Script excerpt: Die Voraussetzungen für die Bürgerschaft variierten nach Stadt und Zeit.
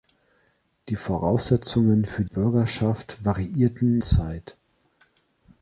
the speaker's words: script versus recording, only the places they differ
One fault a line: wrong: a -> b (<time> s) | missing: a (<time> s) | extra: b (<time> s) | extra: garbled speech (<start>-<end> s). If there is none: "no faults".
missing: die (2.2 s)
missing: nach Stadt und (4.0 s)